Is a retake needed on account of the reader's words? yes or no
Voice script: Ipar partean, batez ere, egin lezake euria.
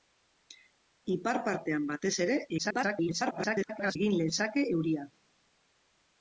yes